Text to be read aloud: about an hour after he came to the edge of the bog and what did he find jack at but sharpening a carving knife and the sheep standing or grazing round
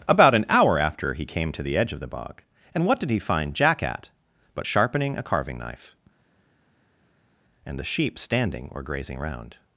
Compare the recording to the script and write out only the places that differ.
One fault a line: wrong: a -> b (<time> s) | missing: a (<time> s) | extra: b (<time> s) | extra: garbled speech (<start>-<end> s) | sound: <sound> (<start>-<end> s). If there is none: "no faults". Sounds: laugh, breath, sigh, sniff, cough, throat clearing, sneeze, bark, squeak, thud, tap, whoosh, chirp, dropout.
no faults